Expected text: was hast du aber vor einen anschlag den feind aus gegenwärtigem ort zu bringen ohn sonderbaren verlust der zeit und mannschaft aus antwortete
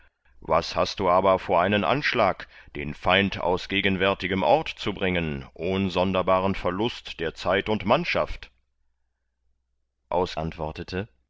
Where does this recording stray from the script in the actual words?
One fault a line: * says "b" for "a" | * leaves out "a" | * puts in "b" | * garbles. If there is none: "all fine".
all fine